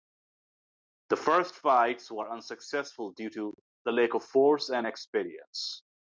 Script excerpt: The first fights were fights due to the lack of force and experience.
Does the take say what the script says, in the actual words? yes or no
no